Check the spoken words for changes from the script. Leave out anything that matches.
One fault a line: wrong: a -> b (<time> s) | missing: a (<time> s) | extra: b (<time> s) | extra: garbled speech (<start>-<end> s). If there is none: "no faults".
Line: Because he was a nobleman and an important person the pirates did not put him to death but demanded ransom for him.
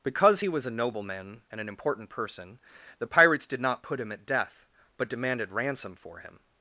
wrong: to -> at (4.1 s)